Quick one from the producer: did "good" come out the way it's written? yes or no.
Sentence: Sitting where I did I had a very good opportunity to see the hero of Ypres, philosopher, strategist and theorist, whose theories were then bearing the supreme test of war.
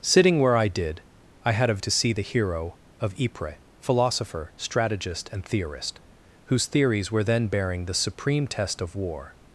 no